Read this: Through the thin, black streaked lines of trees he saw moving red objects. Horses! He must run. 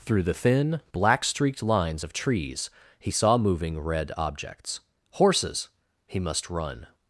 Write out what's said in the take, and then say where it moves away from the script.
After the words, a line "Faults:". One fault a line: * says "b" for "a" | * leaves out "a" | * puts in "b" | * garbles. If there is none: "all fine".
Through the thin, black streaked lines of trees he saw moving red objects. Horses! He must run.
Faults:
all fine